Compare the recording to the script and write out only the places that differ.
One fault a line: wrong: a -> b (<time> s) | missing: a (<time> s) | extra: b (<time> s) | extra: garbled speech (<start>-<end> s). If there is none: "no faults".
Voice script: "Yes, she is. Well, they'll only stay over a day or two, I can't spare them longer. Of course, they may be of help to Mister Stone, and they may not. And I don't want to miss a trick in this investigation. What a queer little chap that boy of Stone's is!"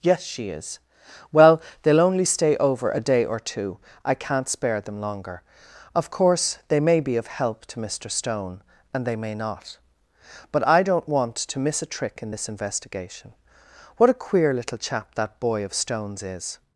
wrong: And -> But (10.5 s)